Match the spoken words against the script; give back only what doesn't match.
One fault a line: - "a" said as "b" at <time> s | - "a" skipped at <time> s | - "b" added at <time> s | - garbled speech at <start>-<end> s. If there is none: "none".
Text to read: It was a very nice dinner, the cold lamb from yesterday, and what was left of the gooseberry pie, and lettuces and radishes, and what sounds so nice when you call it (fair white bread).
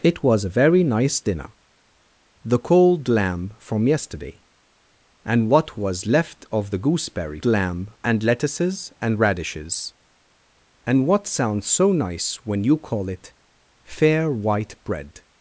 - "pie" said as "lamb" at 7.4 s